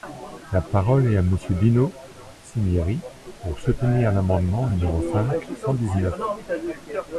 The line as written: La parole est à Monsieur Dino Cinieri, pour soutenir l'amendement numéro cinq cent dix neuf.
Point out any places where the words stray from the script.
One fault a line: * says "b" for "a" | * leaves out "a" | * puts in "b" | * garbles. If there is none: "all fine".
all fine